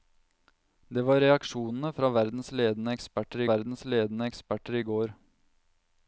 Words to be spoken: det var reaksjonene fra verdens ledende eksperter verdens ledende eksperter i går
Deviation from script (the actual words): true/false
false